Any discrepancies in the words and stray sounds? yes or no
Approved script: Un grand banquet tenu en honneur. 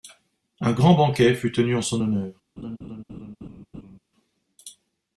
yes